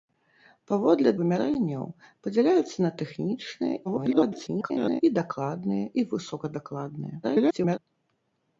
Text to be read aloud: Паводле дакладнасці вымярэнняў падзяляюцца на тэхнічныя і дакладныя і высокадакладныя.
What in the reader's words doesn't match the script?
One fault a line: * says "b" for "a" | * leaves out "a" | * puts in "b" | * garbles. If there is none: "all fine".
* leaves out "дакладнасці"
* garbles
* garbles